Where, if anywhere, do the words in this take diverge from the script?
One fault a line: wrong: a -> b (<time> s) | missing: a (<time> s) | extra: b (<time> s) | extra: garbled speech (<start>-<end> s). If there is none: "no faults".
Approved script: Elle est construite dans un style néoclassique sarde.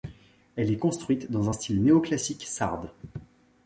no faults